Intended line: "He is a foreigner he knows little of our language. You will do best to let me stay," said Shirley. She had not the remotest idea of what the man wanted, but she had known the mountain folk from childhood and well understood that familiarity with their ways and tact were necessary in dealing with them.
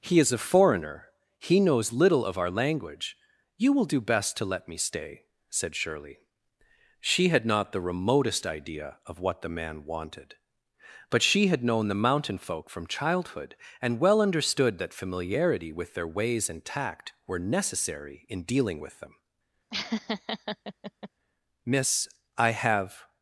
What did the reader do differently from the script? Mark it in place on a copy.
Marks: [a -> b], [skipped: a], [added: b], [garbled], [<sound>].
"He is a foreigner he knows little of our language. You will do best to let me stay," said Shirley. She had not the remotest idea of what the man wanted, but she had known the mountain folk from childhood and well understood that familiarity with their ways and tact were necessary in dealing with them. [laugh] [added: Miss I have]